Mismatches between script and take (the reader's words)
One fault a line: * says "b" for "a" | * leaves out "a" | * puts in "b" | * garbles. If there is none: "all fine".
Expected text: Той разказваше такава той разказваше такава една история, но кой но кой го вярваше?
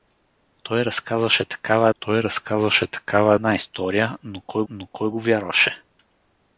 all fine